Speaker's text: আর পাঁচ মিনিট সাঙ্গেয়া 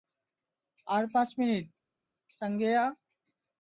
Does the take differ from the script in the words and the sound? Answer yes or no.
no